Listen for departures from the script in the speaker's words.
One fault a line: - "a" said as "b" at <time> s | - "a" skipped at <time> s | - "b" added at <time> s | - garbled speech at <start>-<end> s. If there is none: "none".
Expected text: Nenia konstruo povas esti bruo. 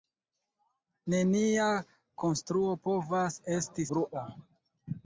none